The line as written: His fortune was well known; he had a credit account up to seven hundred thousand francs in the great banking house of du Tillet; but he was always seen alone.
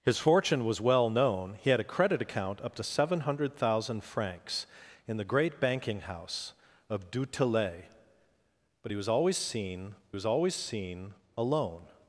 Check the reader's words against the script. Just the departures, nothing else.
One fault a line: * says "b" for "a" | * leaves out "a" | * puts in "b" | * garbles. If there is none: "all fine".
* puts in "was always seen"